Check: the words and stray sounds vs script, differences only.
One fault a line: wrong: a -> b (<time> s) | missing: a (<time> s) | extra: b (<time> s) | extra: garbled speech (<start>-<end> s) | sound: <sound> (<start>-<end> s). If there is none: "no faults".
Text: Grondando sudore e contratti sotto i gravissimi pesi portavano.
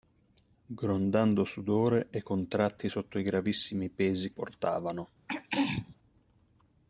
sound: throat clearing (5.3-6.0 s)